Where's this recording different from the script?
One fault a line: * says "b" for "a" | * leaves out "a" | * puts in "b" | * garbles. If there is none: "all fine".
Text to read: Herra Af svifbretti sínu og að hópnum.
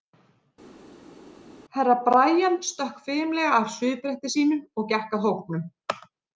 * puts in "Brian stökk fimlega"
* puts in "gekk"